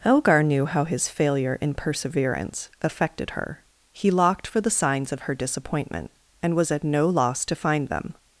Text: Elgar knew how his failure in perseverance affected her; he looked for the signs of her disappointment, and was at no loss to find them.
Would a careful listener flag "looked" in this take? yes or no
yes